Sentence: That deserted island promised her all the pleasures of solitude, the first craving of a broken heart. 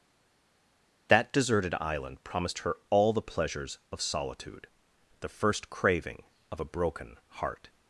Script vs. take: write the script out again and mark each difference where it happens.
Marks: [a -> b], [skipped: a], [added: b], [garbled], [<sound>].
That deserted island promised her all the pleasures of solitude, the first craving of a broken heart.